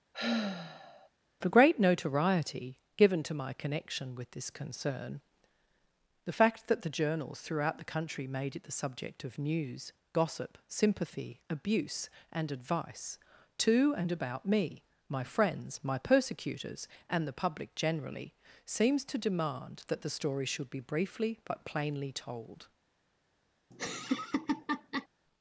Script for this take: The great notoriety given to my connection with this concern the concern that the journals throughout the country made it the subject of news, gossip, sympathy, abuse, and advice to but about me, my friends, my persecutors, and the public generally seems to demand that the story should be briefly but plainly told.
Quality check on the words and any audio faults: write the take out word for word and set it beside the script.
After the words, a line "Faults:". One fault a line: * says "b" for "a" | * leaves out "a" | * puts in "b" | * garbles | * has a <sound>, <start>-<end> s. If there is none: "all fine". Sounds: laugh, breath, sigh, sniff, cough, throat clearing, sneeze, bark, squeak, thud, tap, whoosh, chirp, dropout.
The great notoriety given to my connection with this concern the fact that the journals throughout the country made it the subject of news, gossip, sympathy, abuse, and advice to and about me, my friends, my persecutors, and the public generally seems to demand that the story should be briefly but plainly told.
Faults:
* has a sigh, 0.1-1.1 s
* says "fact" for "concern"
* says "and" for "but"
* has a laugh, 23.7-25.1 s